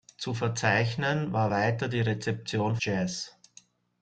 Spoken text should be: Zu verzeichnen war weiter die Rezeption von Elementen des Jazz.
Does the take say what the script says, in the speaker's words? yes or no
no